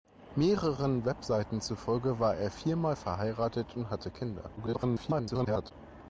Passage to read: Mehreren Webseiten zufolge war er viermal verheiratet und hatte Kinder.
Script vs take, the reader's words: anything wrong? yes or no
yes